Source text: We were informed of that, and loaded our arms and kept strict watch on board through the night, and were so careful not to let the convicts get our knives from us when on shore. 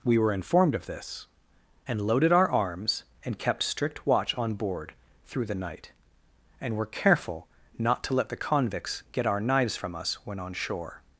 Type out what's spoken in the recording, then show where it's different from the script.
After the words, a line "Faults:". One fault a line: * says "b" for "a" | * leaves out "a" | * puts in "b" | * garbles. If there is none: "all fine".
We were informed of this, and loaded our arms and kept strict watch on board through the night, and were careful not to let the convicts get our knives from us when on shore.
Faults:
* says "this" for "that"
* leaves out "so"